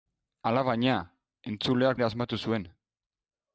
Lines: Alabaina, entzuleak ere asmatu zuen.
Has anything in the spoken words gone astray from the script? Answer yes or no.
no